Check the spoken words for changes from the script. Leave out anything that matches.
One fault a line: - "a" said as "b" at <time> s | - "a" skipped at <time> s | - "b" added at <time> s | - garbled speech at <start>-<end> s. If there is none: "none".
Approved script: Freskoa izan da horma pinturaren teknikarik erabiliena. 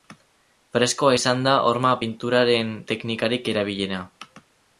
none